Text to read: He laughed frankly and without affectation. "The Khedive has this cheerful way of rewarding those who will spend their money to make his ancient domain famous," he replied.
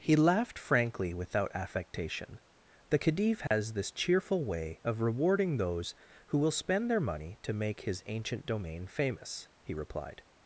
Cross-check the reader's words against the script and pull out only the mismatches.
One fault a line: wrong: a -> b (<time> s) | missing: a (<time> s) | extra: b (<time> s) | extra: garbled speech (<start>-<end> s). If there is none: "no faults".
missing: and (1.1 s)